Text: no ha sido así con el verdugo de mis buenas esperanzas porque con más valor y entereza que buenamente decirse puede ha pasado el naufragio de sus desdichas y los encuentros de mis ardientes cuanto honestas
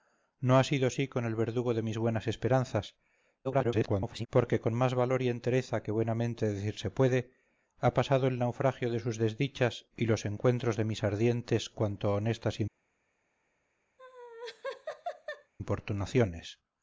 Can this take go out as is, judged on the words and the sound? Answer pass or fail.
fail